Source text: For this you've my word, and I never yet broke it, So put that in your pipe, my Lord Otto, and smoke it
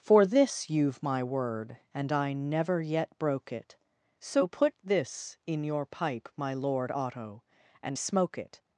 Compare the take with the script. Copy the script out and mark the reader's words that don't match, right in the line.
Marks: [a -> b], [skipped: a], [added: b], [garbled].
For this you've my word, and I never yet broke it, So put [that -> this] in your pipe, my Lord Otto, and smoke it